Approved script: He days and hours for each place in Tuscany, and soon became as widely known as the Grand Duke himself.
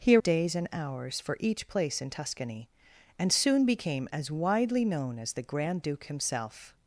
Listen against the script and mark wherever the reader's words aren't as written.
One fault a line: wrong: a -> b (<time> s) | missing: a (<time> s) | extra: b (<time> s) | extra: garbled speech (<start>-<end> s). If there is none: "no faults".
no faults